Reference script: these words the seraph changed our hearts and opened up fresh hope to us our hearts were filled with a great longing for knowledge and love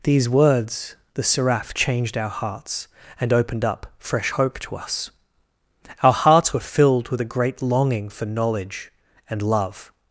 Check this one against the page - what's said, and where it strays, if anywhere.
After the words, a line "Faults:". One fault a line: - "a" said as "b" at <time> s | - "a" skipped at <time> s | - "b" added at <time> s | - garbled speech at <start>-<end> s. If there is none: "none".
these words the seraph changed our hearts and opened up fresh hope to us our hearts were filled with a great longing for knowledge and love
Faults:
none